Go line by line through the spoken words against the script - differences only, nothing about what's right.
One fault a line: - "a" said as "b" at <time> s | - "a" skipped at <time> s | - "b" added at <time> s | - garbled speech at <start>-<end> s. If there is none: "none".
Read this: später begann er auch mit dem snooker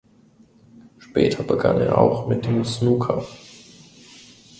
none